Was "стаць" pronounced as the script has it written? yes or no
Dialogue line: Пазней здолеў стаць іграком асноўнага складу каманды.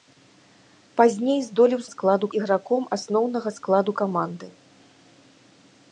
no